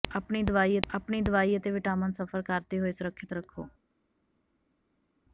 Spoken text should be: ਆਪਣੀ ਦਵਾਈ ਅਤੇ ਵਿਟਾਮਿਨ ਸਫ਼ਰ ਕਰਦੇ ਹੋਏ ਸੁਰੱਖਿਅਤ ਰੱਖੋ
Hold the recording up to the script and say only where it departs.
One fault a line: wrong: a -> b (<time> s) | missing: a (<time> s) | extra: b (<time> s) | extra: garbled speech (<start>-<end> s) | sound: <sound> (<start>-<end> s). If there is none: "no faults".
extra: ਆਪਣੀ ਦਵਾਈ (0.9 s)